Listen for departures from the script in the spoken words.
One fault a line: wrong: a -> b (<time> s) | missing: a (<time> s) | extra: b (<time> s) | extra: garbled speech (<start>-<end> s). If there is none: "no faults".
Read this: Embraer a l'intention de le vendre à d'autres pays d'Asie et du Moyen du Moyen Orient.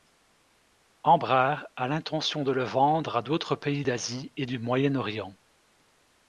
missing: du Moyen (4.9 s)